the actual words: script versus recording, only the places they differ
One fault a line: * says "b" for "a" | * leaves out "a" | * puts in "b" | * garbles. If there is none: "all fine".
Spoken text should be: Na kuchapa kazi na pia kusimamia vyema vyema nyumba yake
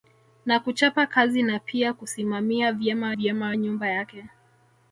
all fine